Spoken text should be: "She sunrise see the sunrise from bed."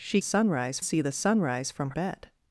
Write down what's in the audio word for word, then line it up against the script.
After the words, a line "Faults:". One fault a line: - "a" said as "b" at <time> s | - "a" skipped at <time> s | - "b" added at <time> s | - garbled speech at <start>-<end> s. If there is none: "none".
"She sunrise see the sunrise from bed."
Faults:
none